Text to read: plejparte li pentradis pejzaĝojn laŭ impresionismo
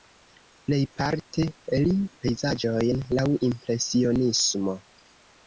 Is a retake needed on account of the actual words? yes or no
yes